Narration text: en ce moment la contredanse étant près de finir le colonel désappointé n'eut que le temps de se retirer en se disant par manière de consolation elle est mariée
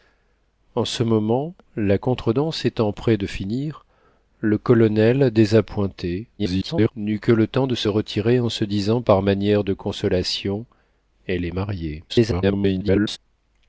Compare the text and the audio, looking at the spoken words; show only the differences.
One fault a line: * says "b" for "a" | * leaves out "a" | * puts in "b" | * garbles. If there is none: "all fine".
* garbles
* garbles